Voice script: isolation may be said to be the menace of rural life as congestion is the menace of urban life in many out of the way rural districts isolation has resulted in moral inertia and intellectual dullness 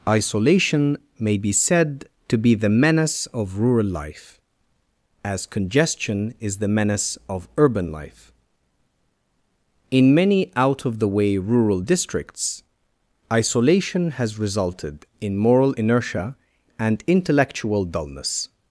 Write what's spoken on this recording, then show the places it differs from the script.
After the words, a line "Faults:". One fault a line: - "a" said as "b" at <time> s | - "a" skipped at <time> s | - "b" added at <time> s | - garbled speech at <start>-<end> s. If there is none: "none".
isolation may be said to be the menace of rural life as congestion is the menace of urban life in many out of the way rural districts isolation has resulted in moral inertia and intellectual dullness
Faults:
none